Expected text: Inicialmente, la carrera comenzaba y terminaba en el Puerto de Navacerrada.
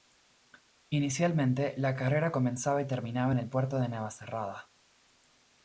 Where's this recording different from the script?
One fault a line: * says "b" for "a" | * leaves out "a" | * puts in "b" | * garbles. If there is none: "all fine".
all fine